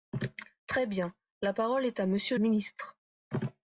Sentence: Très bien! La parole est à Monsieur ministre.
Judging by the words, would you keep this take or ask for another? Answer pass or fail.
pass